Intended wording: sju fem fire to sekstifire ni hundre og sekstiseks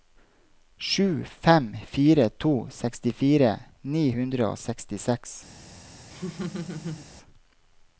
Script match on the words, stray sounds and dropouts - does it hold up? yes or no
no